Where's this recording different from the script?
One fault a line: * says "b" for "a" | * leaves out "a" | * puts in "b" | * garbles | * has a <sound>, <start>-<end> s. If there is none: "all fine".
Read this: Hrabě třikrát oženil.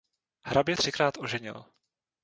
all fine